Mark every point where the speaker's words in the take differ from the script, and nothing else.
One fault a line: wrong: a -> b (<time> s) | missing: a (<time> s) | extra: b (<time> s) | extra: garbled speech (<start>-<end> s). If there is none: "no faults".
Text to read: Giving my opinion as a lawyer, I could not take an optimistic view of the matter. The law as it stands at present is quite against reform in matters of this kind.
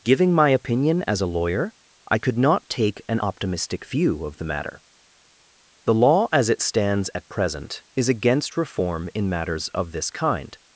missing: quite (8.1 s)